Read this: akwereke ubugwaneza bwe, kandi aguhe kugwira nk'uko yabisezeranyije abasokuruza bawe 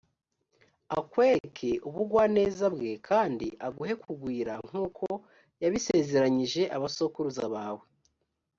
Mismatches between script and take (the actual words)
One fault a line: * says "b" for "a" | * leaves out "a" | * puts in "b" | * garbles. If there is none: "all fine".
all fine